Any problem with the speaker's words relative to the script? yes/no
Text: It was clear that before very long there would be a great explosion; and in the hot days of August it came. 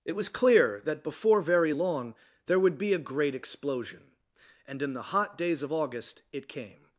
no